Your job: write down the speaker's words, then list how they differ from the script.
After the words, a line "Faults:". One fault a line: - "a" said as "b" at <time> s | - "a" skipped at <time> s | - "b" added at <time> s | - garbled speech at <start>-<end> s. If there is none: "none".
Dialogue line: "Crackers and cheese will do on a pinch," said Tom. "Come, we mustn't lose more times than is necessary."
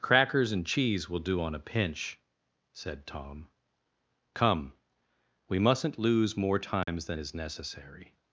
"Crackers and cheese will do on a pinch," said Tom. "Come, we mustn't lose more times than is necessary."
Faults:
none